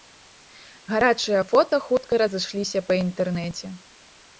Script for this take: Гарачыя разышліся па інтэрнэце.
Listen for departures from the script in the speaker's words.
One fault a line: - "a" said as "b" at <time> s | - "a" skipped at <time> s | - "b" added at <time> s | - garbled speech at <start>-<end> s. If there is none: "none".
- "фота хутка" added at 1.5 s